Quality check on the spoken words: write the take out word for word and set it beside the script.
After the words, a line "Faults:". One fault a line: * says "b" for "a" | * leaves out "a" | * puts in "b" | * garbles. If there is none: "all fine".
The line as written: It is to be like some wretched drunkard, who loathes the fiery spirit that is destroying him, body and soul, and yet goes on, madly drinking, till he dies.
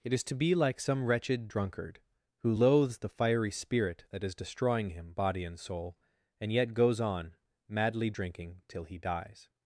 It is to be like some wretched drunkard, who loathes the fiery spirit that is destroying him, body and soul, and yet goes on, madly drinking, till he dies.
Faults:
all fine